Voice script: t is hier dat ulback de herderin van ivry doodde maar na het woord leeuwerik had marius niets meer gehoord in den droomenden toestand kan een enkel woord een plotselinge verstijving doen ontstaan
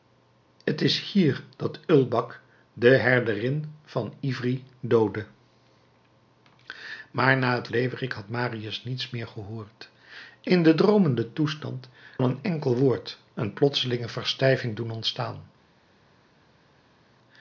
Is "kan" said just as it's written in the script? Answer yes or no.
no